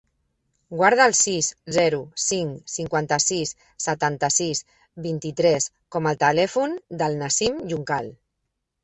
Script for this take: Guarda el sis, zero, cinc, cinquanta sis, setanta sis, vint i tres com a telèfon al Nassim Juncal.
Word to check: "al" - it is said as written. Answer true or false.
false